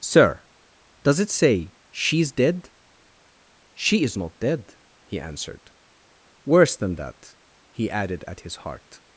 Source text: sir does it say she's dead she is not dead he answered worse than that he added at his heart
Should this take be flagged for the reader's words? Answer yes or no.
no